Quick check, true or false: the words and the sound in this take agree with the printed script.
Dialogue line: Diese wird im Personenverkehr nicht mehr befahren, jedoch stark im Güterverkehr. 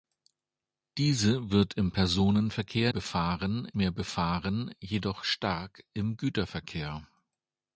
false